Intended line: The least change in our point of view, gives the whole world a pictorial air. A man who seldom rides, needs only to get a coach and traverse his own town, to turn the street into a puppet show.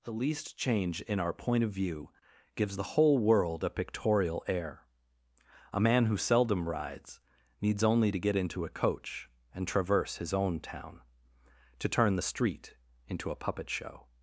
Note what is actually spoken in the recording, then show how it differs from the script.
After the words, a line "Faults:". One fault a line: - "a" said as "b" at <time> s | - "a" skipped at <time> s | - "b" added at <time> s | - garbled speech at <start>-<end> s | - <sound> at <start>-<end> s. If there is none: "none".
The least change in our point of view, gives the whole world a pictorial air. A man who seldom rides, needs only to get into a coach and traverse his own town, to turn the street into a puppet show.
Faults:
- "into" added at 8.3 s